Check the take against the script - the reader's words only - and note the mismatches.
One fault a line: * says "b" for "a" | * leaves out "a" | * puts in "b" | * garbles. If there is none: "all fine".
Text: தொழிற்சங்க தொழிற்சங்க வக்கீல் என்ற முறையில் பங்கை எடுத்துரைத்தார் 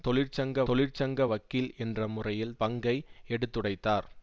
all fine